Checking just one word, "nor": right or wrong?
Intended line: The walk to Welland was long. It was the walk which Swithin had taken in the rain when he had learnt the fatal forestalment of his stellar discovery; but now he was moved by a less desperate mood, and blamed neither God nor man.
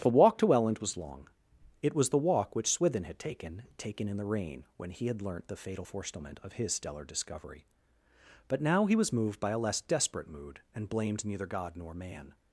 right